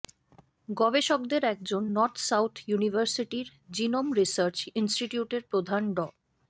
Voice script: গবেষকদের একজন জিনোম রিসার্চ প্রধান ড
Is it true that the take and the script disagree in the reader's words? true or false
true